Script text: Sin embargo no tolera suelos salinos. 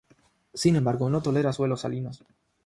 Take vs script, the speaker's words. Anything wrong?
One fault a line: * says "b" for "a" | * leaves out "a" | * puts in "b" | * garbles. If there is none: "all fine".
all fine